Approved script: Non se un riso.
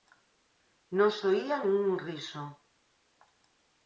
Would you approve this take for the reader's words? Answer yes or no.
no